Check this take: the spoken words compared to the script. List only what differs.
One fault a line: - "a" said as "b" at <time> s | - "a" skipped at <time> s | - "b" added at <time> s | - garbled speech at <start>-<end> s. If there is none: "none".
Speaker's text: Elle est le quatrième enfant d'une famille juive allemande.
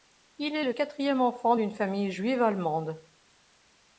- "Elle" said as "Il" at 0.4 s